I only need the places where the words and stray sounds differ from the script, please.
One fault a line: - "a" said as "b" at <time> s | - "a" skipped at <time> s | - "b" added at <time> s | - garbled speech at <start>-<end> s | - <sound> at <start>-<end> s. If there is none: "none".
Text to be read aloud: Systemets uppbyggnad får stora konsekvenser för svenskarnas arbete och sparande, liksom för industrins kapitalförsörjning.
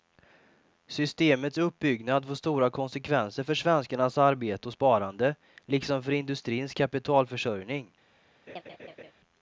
- laugh at 8.5-9.1 s